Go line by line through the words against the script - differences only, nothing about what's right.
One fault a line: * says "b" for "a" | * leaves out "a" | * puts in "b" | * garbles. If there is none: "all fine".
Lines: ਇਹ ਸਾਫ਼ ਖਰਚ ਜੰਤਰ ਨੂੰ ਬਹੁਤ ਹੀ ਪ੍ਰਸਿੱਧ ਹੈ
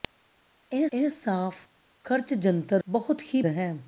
* puts in "ਇਹ"
* leaves out "ਨੂੰ"
* leaves out "ਪ੍ਰਸਿੱਧ"